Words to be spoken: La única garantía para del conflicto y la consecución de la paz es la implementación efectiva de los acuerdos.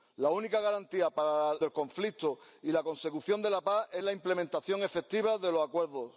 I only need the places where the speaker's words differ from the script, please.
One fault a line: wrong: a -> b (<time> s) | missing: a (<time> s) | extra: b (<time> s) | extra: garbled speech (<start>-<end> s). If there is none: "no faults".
no faults